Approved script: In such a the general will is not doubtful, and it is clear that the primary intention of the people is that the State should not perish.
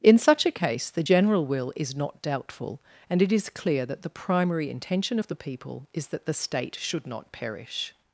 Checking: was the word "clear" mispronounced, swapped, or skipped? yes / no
no